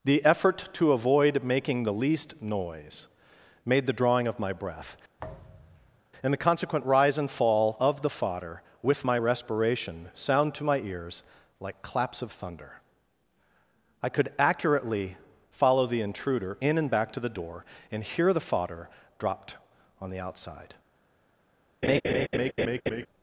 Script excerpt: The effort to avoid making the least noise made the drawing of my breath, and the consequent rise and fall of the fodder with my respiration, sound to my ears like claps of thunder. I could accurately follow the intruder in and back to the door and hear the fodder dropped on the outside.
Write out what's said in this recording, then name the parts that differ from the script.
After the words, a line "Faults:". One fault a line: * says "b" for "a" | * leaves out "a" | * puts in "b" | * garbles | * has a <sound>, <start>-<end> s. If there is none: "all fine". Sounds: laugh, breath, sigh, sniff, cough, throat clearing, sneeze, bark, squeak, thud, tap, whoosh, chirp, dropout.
The effort to avoid making the least noise made the drawing of my breath, and the consequent rise and fall of the fodder with my respiration, sound to my ears like claps of thunder. I could accurately follow the intruder in and back to the door and hear the fodder dropped on the outside.
Faults:
* has a thud, 5.2-6.0 s
* has a laugh, 21.8-23.1 s